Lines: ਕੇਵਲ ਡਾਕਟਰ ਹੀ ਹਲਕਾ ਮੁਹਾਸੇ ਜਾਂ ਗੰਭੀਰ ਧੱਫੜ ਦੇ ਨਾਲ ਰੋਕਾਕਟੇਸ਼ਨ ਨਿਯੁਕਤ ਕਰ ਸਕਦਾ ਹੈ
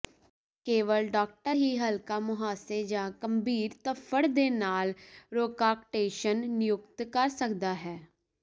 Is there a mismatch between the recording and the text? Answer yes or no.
no